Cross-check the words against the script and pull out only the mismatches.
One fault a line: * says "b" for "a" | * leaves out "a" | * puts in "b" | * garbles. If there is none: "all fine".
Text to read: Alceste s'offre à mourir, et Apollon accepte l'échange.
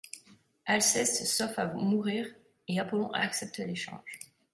all fine